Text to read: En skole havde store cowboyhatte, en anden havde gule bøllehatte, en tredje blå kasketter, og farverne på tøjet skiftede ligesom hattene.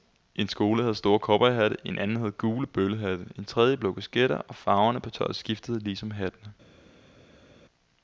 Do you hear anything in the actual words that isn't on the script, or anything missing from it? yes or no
no